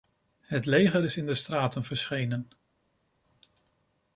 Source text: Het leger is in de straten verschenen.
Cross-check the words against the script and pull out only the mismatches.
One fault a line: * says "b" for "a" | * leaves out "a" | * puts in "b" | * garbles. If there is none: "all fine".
all fine